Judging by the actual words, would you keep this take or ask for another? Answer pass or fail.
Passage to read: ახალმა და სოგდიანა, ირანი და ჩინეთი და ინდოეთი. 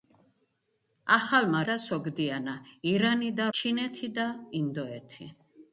pass